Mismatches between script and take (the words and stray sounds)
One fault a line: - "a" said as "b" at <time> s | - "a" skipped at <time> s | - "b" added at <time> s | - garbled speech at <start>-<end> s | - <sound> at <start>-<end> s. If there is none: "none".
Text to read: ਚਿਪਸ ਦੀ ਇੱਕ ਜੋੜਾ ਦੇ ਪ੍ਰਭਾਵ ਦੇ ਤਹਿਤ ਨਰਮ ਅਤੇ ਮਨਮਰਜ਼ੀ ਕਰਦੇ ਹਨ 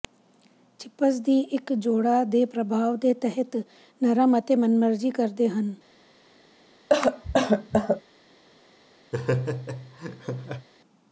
- cough at 6.9-8.0 s
- laugh at 9.1-10.7 s